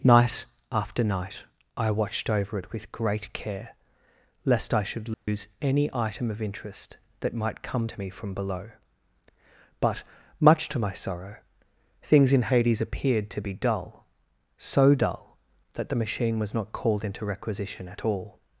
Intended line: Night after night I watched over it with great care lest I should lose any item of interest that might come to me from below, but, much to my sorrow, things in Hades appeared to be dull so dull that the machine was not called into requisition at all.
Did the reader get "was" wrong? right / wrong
right